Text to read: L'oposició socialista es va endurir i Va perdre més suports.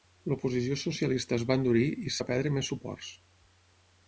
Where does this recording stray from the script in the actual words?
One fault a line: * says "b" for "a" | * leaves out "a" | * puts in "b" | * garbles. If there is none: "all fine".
all fine